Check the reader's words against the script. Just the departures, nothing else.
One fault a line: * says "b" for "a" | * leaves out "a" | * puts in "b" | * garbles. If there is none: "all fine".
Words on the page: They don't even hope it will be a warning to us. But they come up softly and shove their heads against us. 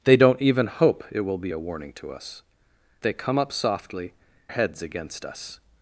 * leaves out "But"
* leaves out "and shove their"